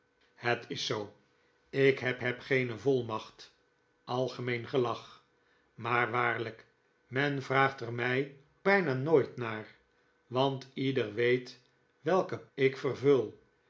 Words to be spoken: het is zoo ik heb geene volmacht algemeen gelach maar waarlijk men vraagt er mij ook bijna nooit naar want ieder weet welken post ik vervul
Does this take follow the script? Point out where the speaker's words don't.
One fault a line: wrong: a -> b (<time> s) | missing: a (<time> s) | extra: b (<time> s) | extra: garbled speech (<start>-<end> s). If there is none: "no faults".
extra: heb (2.2 s)
missing: ook (8.3 s)
missing: post (12.5 s)